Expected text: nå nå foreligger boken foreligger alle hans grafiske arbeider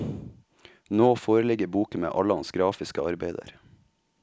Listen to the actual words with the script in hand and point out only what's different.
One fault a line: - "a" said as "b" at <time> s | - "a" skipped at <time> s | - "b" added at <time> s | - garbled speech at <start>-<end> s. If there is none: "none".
- "nå" skipped at 1.1 s
- "foreligger" said as "med" at 2.0 s